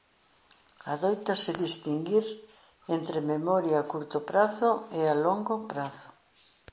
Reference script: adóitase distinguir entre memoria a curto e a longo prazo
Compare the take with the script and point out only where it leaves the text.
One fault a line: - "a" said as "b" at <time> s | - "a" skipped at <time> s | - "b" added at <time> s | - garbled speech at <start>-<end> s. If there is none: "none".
- "prazo" added at 4.3 s